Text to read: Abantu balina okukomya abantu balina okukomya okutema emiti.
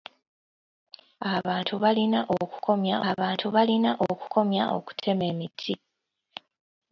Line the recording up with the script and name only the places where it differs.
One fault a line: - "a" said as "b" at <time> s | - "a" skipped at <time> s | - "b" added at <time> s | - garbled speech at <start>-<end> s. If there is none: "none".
none